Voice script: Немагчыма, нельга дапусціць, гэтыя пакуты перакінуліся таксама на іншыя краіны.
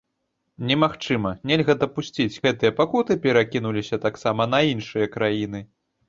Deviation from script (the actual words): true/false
false